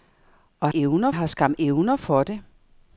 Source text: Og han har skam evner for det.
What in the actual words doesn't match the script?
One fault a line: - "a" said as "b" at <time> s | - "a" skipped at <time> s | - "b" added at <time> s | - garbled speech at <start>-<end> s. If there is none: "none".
- "han" said as "evner" at 0.7 s